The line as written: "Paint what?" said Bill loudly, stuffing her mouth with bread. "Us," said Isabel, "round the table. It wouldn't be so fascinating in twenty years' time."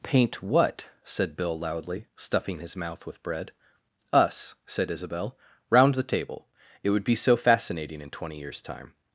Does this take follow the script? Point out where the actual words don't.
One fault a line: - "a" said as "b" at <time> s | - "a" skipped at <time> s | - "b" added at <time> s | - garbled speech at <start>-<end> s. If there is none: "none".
- "her" said as "his" at 2.6 s
- "wouldn't" said as "would" at 6.9 s